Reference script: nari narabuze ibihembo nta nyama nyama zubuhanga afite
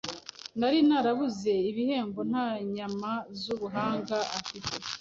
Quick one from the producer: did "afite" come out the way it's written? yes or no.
yes